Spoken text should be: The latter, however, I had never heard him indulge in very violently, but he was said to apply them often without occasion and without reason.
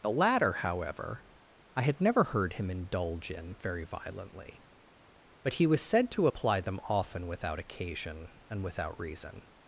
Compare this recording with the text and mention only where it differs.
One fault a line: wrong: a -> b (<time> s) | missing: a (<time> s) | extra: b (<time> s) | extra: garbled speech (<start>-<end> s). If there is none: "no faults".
no faults